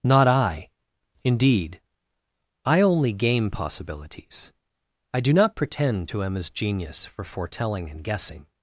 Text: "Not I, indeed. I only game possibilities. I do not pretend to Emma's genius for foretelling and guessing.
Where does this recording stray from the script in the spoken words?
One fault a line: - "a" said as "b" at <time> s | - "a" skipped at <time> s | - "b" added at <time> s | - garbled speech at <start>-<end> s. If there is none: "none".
none